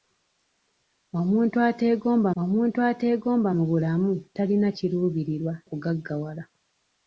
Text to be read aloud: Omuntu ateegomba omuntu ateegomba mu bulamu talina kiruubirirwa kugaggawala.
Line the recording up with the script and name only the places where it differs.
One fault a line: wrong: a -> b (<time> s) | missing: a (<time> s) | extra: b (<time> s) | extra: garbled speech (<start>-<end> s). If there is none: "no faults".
no faults